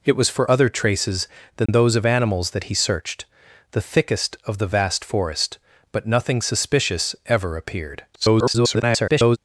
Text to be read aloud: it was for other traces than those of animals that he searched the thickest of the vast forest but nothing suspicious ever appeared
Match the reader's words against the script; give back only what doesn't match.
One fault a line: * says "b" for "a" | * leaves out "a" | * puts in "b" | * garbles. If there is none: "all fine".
* garbles